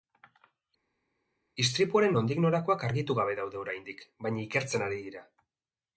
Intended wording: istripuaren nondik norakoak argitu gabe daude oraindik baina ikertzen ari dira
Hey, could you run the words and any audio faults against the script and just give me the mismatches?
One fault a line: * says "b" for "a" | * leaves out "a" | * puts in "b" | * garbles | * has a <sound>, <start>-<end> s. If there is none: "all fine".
all fine